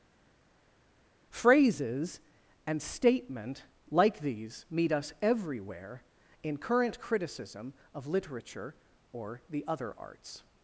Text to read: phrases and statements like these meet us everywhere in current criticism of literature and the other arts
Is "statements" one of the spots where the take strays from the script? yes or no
yes